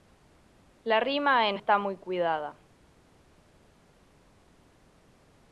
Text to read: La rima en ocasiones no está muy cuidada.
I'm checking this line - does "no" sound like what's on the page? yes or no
no